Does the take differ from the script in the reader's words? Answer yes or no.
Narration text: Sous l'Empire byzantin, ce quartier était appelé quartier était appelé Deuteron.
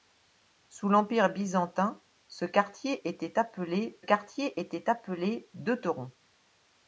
no